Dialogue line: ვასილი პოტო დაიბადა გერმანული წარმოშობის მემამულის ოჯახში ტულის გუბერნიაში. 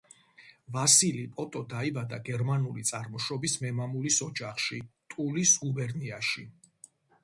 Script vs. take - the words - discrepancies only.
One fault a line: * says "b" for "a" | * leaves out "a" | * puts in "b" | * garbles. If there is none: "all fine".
all fine